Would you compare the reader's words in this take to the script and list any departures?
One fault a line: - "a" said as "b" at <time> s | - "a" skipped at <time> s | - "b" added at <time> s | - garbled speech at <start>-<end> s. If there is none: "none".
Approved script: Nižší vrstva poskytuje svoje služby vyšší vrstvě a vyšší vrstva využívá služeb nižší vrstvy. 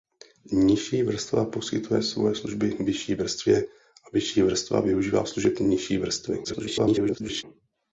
- garbled speech at 6.4-7.4 s